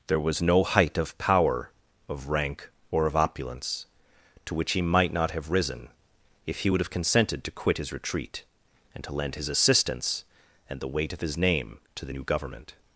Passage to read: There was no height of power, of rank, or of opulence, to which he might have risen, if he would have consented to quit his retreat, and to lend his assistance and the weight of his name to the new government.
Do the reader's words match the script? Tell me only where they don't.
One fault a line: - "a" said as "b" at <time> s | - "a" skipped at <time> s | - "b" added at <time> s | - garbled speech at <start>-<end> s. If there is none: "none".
- "not" added at 5.1 s